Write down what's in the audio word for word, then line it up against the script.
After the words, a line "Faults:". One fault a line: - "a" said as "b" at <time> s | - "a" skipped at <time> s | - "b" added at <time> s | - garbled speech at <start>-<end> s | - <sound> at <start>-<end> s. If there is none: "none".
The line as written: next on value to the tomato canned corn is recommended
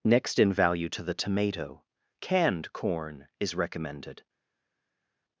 next in value to the tomato canned corn is recommended
Faults:
- "on" said as "in" at 0.4 s